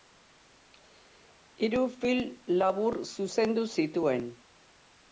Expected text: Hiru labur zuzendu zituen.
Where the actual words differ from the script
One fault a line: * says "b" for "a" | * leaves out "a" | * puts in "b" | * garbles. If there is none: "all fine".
* puts in "film"